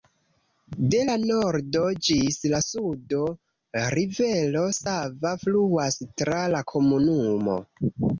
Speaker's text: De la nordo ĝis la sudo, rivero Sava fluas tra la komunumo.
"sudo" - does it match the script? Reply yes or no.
yes